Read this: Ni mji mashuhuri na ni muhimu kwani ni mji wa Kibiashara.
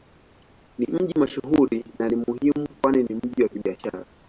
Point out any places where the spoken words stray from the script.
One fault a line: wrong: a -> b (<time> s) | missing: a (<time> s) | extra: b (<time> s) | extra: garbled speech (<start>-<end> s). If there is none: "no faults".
no faults